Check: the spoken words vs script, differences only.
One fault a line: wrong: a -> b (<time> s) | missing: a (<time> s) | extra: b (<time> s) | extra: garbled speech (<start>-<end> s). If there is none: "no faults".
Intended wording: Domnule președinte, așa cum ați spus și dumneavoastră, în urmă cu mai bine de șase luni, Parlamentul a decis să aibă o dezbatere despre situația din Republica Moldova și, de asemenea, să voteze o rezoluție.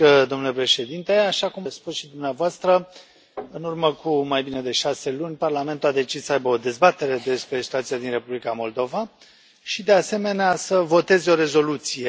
missing: ați (1.7 s)